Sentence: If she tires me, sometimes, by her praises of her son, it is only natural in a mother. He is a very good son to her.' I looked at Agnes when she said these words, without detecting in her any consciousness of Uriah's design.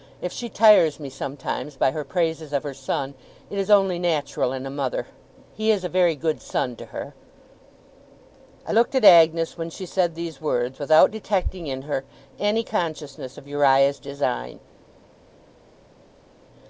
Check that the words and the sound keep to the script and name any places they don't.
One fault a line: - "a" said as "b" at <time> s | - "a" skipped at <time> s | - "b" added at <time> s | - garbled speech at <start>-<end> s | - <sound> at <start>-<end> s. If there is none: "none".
none